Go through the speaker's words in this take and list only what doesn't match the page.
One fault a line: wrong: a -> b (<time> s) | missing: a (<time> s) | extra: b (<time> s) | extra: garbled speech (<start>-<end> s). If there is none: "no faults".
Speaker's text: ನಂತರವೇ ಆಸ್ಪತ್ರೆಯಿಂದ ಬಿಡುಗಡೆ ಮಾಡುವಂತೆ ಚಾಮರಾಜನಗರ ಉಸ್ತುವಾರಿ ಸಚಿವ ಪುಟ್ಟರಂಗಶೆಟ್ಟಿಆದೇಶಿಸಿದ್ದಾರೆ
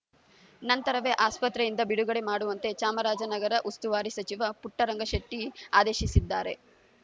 no faults